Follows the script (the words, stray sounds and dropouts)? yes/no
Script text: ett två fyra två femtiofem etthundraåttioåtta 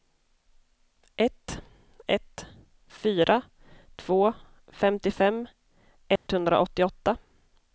no